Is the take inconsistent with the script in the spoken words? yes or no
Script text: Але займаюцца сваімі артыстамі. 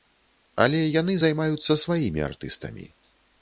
yes